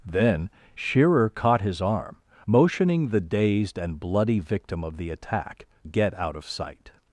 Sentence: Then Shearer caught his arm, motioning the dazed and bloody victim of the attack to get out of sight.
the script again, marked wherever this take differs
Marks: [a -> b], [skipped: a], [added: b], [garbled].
Then Shearer caught his arm, motioning the dazed and bloody victim of the attack [skipped: to] get out of sight.